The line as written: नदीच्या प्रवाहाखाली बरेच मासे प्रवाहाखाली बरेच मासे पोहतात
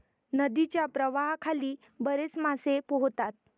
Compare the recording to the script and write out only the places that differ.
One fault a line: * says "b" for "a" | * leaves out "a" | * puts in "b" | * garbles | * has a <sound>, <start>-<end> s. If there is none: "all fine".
* leaves out "प्रवाहाखाली बरेच मासे"